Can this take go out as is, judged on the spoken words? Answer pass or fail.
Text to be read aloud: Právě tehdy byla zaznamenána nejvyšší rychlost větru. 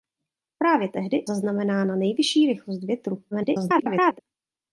fail